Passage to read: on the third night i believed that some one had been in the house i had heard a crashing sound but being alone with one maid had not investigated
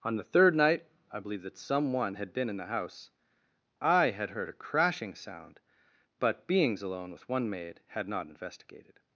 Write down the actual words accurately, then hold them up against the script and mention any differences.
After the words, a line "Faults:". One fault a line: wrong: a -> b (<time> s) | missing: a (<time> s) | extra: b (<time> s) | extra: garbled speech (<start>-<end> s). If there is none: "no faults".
on the third night i believed that some one had been in the house i had heard a crashing sound but beings alone with one maid had not investigated
Faults:
wrong: being -> beings (6.5 s)